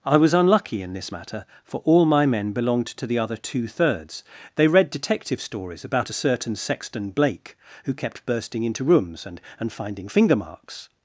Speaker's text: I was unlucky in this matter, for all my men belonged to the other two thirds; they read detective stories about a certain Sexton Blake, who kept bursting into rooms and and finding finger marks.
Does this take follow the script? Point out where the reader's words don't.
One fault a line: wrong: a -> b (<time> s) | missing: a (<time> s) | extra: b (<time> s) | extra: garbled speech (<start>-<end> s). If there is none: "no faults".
no faults